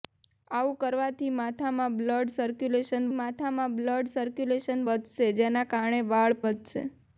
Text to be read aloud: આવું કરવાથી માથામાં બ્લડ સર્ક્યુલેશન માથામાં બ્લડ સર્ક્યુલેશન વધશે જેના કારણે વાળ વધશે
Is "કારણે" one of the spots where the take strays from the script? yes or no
no